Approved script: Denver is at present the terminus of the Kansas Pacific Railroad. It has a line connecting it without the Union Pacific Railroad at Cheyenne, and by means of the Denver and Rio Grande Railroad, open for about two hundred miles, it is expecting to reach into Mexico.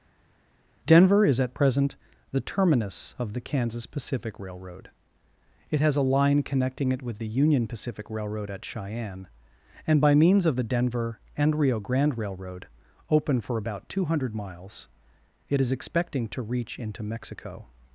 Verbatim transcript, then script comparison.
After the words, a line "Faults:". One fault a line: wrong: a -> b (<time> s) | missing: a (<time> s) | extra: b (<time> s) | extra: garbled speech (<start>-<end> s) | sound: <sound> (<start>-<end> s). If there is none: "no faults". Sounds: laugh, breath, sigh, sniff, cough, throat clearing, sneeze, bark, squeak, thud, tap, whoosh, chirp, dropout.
Denver is at present the terminus of the Kansas Pacific Railroad. It has a line connecting it with the Union Pacific Railroad at Cheyenne, and by means of the Denver and Rio Grande Railroad, open for about two hundred miles, it is expecting to reach into Mexico.
Faults:
wrong: without -> with (7.0 s)